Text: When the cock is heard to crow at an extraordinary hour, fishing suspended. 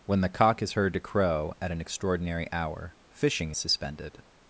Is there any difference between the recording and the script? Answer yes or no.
no